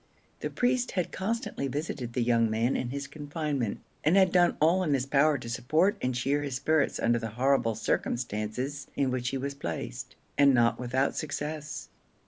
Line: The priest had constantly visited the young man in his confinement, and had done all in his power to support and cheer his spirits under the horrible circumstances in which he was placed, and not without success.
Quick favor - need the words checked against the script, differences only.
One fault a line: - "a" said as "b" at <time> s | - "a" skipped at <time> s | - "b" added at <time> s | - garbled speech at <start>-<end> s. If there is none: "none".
none